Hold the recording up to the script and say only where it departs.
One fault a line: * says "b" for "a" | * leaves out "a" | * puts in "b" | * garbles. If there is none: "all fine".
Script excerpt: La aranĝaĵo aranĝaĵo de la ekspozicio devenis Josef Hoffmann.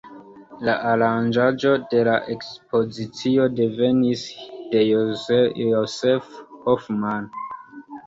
* leaves out "aranĝaĵo"
* puts in "de"